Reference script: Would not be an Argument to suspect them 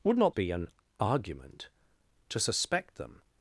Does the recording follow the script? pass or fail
pass